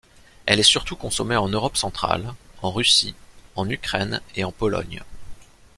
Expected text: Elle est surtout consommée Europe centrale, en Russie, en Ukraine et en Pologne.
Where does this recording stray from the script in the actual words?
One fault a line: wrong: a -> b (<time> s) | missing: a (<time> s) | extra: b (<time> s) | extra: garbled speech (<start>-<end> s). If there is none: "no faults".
extra: en (1.4 s)